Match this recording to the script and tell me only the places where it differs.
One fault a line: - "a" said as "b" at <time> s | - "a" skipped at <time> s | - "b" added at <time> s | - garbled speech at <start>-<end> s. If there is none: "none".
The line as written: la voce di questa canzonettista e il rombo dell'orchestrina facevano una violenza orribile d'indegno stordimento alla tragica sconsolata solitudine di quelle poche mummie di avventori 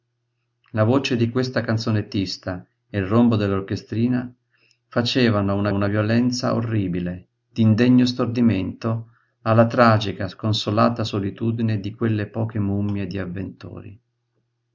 - "una" added at 5.7 s